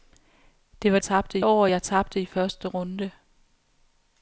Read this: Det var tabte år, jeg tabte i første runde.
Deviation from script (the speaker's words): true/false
false